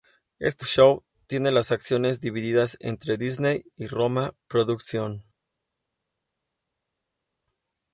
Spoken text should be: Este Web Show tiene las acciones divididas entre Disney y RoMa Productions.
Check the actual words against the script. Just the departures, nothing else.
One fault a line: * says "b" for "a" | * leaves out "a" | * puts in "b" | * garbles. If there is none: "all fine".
* leaves out "Web"